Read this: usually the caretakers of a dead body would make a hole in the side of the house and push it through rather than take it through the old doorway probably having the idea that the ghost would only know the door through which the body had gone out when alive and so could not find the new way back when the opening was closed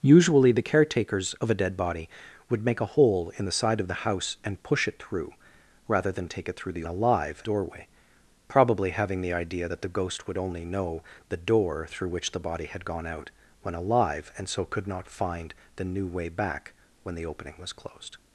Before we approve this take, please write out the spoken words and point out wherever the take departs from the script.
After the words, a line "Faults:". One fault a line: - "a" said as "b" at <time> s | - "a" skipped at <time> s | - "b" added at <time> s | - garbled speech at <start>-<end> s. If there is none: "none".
usually the caretakers of a dead body would make a hole in the side of the house and push it through rather than take it through the alive doorway probably having the idea that the ghost would only know the door through which the body had gone out when alive and so could not find the new way back when the opening was closed
Faults:
- "old" said as "alive" at 6.9 s